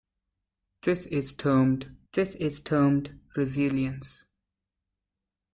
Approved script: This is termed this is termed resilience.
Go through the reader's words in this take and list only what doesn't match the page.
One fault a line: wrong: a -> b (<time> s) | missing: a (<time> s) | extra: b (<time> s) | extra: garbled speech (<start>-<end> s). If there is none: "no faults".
no faults